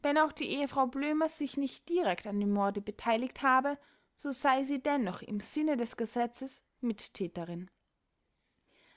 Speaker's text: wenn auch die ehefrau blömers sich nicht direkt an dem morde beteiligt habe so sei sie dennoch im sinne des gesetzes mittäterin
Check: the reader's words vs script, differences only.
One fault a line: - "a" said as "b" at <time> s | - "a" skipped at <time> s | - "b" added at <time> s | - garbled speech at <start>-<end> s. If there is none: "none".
none